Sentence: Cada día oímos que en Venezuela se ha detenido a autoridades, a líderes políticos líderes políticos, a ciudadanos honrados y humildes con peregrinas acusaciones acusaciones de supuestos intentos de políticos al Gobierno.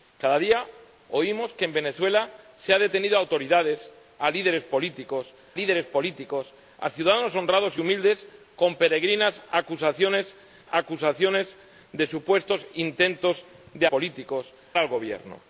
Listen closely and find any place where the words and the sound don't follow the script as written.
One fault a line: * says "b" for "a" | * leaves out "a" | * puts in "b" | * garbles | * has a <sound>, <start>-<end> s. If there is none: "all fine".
all fine